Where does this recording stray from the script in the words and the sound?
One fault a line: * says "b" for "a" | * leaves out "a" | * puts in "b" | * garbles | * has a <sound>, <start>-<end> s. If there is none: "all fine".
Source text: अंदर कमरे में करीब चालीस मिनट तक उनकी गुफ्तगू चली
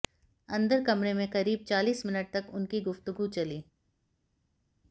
all fine